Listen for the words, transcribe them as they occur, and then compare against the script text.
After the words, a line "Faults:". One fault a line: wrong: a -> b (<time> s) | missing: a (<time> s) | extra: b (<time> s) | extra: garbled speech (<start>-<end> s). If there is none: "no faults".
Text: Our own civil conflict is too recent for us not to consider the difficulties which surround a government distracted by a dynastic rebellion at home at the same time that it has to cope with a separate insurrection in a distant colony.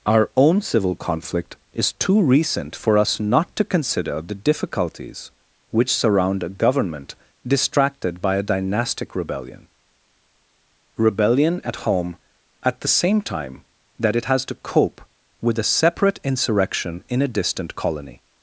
Our own civil conflict is too recent for us not to consider the difficulties which surround a government distracted by a dynastic rebellion rebellion at home at the same time that it has to cope with a separate insurrection in a distant colony.
Faults:
extra: rebellion (11.0 s)